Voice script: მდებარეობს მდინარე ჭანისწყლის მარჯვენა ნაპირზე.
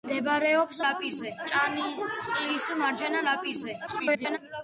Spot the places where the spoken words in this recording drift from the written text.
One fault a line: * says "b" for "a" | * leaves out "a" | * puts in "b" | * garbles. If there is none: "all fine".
* says "ნაპირზე" for "მდინარე"
* garbles